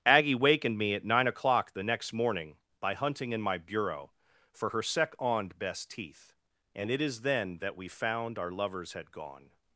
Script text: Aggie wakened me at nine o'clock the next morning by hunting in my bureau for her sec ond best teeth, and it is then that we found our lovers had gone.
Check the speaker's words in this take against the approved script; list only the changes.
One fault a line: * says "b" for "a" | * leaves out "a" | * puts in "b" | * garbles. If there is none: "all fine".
all fine